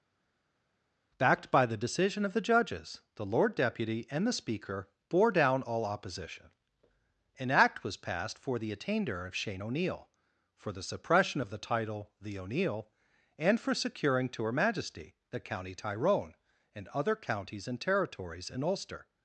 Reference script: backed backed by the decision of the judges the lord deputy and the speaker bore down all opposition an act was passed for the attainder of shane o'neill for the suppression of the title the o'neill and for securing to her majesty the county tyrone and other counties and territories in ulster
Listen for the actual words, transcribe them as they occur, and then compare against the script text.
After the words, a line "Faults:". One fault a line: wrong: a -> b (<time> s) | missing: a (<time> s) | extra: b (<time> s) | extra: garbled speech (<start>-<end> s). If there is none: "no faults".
backed by the decision of the judges the lord deputy and the speaker bore down all opposition an act was passed for the attainder of shane o'neill for the suppression of the title the o'neill and for securing to her majesty the county tyrone and other counties and territories in ulster
Faults:
missing: backed (1.5 s)